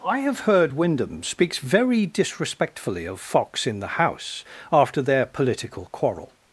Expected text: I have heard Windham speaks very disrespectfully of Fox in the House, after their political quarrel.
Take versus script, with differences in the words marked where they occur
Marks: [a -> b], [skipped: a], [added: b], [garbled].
I have heard Windham speaks very disrespectfully of Fox in the House, after their political quarrel.